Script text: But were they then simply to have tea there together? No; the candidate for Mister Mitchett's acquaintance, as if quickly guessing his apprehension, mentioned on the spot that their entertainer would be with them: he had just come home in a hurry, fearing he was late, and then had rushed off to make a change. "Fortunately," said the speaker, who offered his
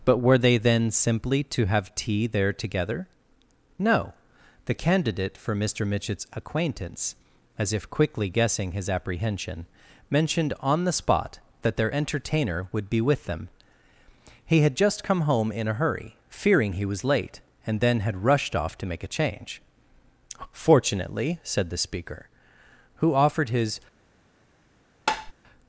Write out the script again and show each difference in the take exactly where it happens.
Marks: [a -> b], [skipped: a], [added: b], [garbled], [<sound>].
But were they then simply to have tea there together? No; the candidate for Mister Mitchett's acquaintance, as if quickly guessing his apprehension, mentioned on the spot that their entertainer would be with them: he had just come home in a hurry, fearing he was late, and then had rushed off to make a change. "Fortunately," said the speaker, who offered his [tap]